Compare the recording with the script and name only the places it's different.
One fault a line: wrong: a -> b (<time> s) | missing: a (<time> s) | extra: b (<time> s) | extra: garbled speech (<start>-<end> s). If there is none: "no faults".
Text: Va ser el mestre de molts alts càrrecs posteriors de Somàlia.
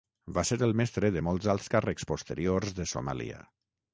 no faults